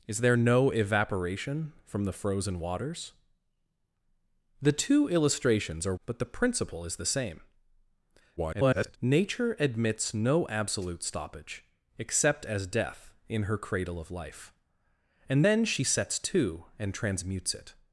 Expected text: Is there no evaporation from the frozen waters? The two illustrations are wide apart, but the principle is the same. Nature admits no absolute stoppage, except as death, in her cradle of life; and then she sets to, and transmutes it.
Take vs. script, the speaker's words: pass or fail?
fail